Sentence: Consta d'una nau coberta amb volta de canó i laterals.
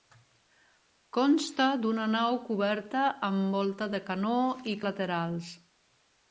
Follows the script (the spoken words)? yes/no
yes